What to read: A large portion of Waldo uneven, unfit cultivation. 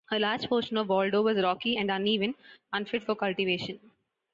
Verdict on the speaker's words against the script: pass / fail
fail